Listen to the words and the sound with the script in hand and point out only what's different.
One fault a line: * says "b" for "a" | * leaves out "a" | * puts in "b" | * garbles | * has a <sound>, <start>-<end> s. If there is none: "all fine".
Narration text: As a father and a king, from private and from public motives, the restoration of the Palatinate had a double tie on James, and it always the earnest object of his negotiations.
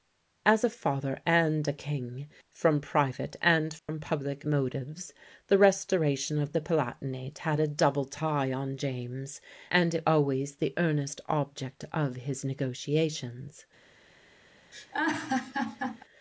* has a dropout, 3.8-3.9 s
* has a laugh, 14.7-16.0 s